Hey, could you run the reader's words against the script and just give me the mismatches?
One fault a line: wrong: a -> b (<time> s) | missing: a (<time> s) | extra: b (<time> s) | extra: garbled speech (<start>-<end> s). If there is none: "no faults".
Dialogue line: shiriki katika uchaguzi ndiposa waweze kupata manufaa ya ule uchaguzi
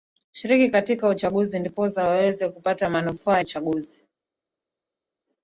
missing: ya ule (3.4 s)